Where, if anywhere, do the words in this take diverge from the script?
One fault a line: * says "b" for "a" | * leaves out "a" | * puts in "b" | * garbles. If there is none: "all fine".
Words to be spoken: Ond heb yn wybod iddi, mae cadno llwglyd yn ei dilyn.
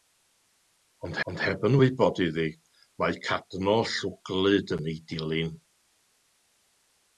* puts in "ond"